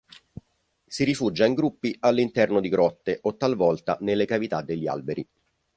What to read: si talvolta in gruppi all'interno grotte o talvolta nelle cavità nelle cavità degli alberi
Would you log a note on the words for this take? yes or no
yes